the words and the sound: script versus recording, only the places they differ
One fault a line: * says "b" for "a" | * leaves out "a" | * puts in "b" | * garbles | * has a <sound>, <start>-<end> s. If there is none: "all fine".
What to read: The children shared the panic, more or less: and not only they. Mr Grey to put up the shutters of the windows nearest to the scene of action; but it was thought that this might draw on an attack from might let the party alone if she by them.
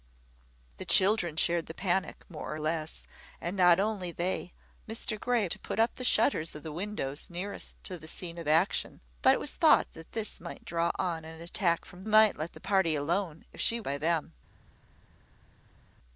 all fine